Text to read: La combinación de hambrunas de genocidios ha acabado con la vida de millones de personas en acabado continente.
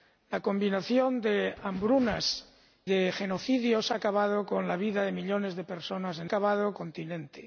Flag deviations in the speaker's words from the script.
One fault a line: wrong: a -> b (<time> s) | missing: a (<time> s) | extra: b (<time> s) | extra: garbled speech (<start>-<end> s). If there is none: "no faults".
no faults